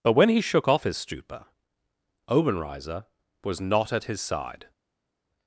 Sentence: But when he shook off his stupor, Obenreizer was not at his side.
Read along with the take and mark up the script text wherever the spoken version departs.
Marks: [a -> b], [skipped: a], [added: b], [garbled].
But when he shook off his stupor, Obenreizer was not at his side.